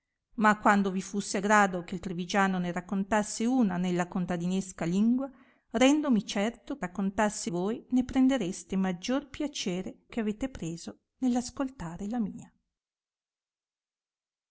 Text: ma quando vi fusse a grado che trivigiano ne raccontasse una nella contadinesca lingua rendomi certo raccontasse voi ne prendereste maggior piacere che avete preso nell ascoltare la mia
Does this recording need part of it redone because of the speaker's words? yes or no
no